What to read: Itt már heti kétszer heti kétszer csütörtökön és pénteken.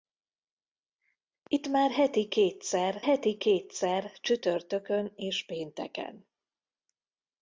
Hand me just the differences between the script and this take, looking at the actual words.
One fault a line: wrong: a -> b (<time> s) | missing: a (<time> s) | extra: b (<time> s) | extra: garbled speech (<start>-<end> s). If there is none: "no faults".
no faults